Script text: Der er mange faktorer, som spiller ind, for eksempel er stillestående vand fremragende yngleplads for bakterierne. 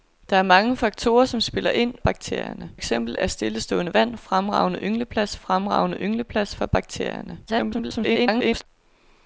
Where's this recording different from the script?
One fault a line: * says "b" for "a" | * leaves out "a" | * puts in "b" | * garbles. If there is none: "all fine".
* says "bakterierne" for "for"
* puts in "fremragende yngleplads"
* garbles